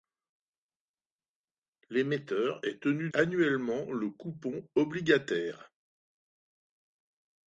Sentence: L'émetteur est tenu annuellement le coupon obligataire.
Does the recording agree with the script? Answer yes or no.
yes